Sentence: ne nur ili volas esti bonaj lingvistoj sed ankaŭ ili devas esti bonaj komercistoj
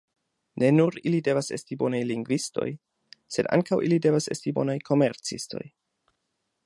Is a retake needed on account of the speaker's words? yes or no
yes